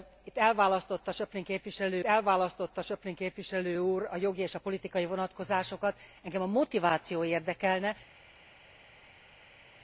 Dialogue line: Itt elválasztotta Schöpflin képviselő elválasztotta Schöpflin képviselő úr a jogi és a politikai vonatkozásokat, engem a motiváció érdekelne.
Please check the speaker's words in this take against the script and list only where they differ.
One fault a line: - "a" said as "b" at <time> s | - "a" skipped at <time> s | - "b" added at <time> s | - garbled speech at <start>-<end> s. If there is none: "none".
none